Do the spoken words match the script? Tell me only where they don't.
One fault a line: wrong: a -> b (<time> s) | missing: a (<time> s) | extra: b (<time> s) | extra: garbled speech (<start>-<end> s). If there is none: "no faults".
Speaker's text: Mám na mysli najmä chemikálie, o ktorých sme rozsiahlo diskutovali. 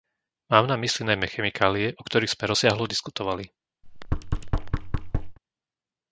no faults